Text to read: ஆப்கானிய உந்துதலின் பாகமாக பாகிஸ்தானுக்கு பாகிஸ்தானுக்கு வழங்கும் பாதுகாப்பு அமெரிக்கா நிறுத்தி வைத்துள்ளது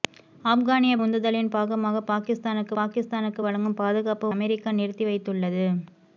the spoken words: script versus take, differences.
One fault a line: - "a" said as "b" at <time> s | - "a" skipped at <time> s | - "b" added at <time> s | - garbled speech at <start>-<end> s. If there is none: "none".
none